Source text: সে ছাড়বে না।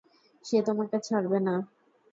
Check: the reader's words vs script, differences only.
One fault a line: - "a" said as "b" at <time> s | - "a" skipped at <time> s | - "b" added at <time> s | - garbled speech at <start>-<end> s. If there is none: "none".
- "তোমাকে" added at 0.7 s